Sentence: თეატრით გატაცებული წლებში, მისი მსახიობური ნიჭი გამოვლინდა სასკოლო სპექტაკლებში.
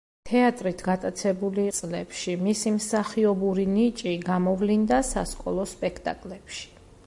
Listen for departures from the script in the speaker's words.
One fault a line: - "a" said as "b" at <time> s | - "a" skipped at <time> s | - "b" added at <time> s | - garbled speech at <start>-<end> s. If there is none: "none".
none